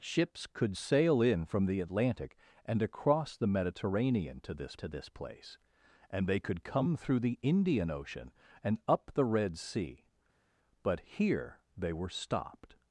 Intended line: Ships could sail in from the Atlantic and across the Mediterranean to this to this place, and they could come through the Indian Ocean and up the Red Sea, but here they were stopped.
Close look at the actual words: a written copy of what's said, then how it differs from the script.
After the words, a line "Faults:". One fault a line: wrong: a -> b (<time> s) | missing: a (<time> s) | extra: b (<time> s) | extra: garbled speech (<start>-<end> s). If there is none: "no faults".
Ships could sail in from the Atlantic and across the Mediterranean to this to this place, and they could come through the Indian Ocean and up the Red Sea, but here they were stopped.
Faults:
no faults